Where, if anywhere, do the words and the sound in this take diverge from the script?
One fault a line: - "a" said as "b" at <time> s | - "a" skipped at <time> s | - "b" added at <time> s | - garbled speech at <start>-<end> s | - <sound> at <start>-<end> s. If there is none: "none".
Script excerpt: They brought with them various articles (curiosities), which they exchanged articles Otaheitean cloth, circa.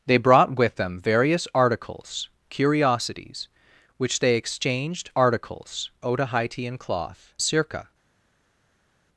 none